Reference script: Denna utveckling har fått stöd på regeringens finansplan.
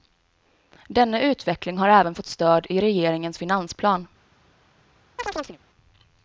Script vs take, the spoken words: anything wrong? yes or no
yes